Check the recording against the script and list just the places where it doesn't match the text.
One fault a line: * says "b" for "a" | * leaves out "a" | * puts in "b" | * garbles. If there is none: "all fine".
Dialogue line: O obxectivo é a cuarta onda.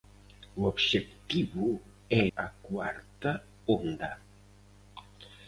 all fine